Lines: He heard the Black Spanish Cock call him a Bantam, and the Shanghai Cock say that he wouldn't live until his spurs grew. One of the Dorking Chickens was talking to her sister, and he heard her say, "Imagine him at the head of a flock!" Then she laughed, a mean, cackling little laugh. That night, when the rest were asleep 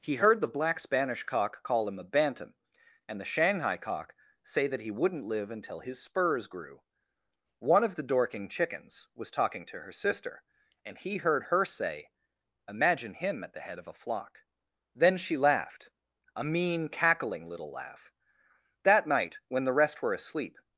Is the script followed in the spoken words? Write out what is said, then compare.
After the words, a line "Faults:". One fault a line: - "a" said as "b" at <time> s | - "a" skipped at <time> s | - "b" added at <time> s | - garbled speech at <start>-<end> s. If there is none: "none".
He heard the Black Spanish Cock call him a Bantam, and the Shanghai Cock say that he wouldn't live until his spurs grew. One of the Dorking Chickens was talking to her sister, and he heard her say, "Imagine him at the head of a flock!" Then she laughed, a mean, cackling little laugh. That night, when the rest were asleep
Faults:
none